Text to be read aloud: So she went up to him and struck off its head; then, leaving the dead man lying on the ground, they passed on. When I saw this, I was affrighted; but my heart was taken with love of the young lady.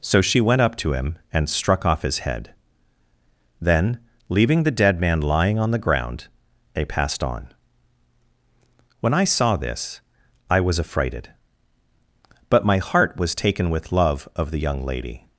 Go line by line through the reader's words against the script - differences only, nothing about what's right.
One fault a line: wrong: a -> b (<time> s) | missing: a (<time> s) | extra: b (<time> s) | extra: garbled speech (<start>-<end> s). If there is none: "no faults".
wrong: its -> his (2.0 s)